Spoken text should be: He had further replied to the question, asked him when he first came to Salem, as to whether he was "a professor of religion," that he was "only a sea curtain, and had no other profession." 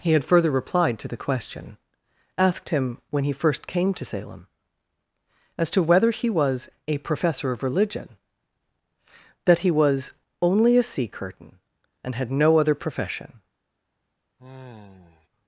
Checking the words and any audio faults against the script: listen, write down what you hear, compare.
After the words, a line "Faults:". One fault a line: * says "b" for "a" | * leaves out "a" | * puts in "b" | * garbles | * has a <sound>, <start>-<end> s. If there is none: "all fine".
He had further replied to the question, asked him when he first came to Salem, as to whether he was "a professor of religion," that he was "only a sea curtain, and had no other profession."
Faults:
* has a sigh, 14.4-15.3 s